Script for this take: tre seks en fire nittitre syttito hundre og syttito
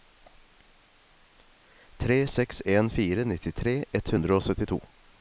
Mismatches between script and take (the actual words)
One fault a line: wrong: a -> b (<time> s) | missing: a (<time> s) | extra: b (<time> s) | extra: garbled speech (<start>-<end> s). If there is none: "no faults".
wrong: syttito -> ett (4.0 s)